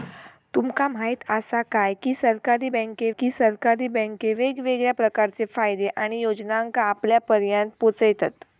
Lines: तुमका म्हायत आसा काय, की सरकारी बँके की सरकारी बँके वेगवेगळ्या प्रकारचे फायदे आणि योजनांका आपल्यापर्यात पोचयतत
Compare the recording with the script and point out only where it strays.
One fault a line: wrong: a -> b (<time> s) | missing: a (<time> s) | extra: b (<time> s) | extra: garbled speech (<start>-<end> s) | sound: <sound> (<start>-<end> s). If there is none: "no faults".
no faults